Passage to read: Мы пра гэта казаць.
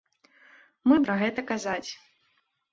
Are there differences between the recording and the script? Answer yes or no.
no